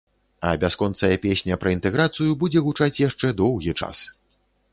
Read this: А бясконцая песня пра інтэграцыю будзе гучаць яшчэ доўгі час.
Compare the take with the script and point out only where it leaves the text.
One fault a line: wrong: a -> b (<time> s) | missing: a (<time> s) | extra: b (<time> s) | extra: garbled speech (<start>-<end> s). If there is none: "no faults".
no faults